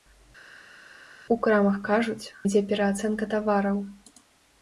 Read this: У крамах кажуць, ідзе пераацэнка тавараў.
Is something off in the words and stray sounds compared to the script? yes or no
no